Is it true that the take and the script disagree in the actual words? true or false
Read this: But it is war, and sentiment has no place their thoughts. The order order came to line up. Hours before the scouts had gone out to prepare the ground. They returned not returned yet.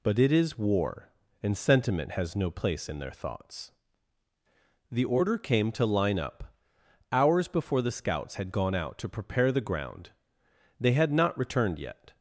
true